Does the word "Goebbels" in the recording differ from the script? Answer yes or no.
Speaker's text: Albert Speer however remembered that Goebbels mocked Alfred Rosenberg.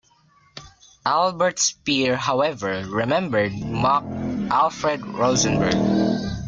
yes